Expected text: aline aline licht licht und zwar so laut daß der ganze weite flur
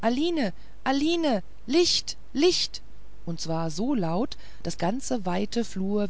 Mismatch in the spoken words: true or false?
true